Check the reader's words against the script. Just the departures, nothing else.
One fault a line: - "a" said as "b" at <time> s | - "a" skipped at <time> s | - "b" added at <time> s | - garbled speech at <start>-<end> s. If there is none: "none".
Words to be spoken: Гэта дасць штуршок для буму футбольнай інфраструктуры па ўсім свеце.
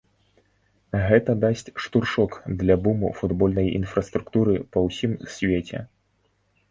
none